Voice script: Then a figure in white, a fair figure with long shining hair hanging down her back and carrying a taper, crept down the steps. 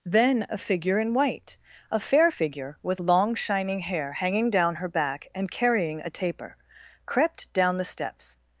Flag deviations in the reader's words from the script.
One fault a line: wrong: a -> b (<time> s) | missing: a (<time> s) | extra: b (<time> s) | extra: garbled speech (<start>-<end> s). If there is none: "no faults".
no faults